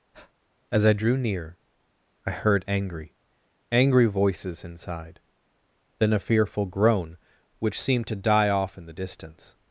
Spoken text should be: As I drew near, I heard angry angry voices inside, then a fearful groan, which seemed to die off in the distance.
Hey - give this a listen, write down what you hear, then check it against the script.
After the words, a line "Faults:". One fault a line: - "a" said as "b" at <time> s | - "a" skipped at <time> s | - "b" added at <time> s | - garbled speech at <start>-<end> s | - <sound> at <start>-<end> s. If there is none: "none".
As I drew near, I heard angry angry voices inside, then a fearful groan, which seemed to die off in the distance.
Faults:
- breath at 0.1-0.3 s